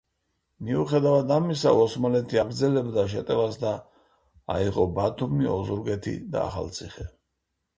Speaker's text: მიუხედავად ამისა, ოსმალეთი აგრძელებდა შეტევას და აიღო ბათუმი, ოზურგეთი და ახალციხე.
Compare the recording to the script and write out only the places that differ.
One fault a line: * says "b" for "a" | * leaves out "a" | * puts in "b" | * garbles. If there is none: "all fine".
all fine